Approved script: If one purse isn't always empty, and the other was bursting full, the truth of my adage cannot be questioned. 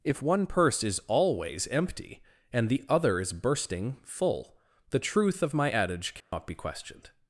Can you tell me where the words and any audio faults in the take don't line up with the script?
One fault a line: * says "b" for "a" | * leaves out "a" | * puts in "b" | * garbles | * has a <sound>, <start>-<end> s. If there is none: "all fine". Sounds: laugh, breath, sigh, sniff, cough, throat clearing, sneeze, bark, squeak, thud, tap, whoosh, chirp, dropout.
* says "is" for "isn't"
* says "is" for "was"
* has a dropout, 6.2-6.3 s